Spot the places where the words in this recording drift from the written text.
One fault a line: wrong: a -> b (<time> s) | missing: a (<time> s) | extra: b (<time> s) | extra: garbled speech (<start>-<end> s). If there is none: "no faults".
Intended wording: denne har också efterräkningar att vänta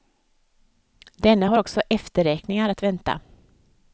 no faults